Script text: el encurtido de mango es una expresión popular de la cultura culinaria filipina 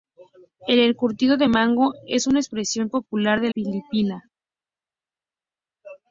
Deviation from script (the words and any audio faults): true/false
true